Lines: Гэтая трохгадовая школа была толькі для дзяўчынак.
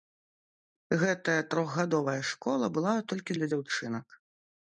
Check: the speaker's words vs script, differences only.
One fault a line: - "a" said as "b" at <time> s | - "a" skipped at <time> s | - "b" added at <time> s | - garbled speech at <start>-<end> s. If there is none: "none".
none